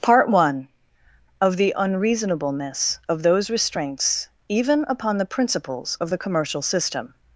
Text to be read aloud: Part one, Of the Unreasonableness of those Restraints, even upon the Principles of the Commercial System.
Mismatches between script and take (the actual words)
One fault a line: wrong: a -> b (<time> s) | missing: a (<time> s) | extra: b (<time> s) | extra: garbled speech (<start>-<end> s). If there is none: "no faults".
no faults